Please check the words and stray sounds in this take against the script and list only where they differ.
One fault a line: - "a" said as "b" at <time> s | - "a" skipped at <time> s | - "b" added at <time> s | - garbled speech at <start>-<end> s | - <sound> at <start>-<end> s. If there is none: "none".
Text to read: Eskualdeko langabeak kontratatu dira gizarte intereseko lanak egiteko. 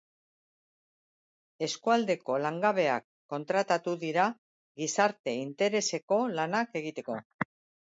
none